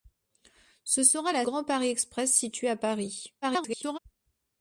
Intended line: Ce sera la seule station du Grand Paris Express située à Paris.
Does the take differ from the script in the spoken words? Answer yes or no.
yes